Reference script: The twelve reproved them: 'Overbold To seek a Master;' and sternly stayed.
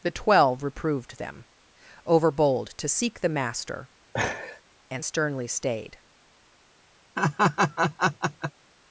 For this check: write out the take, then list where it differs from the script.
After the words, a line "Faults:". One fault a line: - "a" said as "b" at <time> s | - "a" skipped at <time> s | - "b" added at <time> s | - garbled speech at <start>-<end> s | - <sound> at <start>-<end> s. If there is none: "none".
The twelve reproved them: 'Overbold To seek the Master;' and sternly stayed.
Faults:
- "a" said as "the" at 3.2 s
- laugh at 4.1-4.6 s
- laugh at 7.2-8.5 s